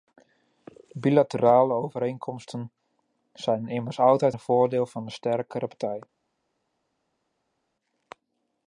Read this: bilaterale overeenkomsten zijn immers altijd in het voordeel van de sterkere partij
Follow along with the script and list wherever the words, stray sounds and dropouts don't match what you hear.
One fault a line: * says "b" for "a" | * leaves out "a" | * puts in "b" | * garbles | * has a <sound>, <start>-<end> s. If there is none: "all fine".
* leaves out "in"